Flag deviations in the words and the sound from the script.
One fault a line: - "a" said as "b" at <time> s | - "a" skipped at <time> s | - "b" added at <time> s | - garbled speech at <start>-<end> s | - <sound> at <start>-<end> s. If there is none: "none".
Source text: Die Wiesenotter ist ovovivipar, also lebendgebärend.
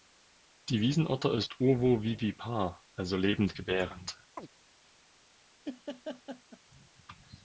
- chirp at 4.4-4.5 s
- laugh at 5.6-6.6 s